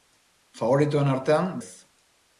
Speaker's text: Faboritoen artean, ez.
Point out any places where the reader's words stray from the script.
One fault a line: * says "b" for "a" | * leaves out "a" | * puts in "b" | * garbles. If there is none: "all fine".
all fine